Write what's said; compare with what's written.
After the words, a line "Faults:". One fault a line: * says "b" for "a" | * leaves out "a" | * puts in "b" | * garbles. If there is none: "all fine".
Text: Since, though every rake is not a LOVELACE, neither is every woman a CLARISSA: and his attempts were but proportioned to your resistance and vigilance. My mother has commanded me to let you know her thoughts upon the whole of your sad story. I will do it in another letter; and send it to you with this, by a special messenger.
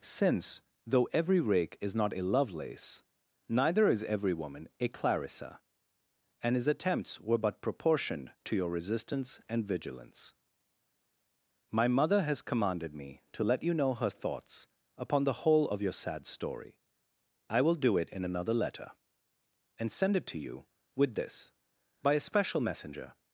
Since, though every rake is not a LOVELACE, neither is every woman a CLARISSA: and his attempts were but proportioned to your resistance and vigilance. My mother has commanded me to let you know her thoughts upon the whole of your sad story. I will do it in another letter; and send it to you with this, by a special messenger.
Faults:
all fine